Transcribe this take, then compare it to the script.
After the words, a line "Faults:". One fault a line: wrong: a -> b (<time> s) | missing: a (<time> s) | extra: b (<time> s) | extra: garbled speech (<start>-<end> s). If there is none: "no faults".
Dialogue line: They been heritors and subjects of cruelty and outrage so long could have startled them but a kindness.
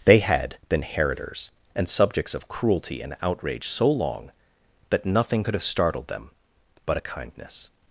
They had been heritors and subjects of cruelty and outrage so long that nothing could have startled them but a kindness.
Faults:
extra: had (0.2 s)
extra: that nothing (4.9 s)